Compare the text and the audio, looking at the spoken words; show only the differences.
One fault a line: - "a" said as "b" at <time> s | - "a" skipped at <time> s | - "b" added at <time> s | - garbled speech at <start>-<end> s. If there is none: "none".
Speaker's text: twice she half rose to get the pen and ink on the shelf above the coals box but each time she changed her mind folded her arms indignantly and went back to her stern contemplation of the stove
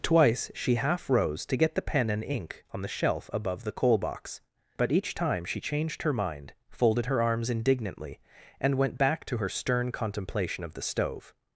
- "coals" said as "coal" at 3.7 s